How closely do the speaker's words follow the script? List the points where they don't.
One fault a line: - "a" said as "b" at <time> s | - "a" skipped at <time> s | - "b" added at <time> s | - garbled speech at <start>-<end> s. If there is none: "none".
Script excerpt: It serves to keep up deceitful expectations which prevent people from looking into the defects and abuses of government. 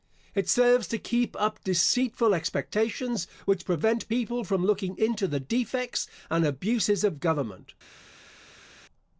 none